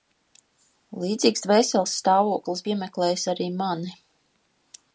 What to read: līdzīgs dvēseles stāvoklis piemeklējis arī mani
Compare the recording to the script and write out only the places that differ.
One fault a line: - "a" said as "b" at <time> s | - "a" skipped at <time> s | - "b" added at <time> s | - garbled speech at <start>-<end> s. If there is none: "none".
none